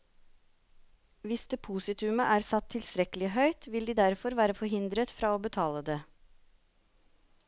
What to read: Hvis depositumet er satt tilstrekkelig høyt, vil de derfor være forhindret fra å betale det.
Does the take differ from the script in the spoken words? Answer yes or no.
no